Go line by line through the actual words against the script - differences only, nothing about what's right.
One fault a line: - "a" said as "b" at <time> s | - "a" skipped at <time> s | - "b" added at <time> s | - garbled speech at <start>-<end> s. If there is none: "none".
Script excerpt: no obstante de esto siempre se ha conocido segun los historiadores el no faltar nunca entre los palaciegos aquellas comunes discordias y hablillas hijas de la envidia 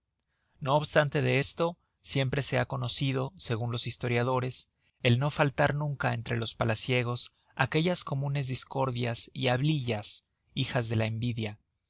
none